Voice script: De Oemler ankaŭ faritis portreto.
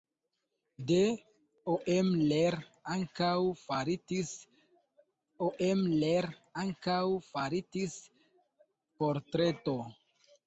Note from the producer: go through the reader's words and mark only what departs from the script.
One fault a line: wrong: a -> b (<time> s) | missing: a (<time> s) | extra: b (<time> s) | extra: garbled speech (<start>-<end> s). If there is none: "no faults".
extra: Oemler ankaŭ faritis (5.5 s)